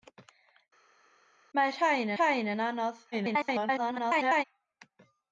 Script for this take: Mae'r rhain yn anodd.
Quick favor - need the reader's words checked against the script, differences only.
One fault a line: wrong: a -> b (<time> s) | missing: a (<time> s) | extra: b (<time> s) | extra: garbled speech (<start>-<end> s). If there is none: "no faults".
extra: rhain (2.2 s)
extra: garbled speech (3.1-4.4 s)